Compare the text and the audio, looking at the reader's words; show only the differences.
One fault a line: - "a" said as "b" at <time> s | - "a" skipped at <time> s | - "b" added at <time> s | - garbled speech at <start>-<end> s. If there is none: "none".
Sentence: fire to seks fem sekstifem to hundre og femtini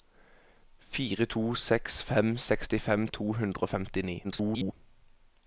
- garbled speech at 4.2-4.7 s